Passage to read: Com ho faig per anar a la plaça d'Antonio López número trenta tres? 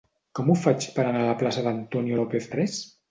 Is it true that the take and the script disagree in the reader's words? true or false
true